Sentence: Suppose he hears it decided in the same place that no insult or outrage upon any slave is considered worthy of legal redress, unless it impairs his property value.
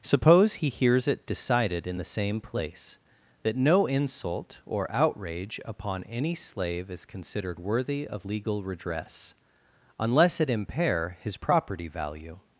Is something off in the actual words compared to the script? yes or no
yes